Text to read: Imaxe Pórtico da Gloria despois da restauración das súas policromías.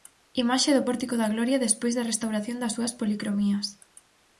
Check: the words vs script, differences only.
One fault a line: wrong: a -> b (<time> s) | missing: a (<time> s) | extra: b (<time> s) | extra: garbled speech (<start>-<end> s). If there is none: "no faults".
extra: do (0.7 s)